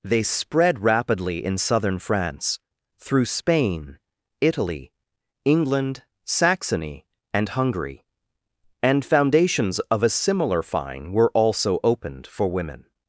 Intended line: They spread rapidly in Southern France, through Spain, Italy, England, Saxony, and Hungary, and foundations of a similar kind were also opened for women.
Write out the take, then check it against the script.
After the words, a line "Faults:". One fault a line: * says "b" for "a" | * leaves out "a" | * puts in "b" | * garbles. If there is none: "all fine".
They spread rapidly in Southern France, through Spain, Italy, England, Saxony, and Hungary, and foundations of a similar fine were also opened for women.
Faults:
* says "fine" for "kind"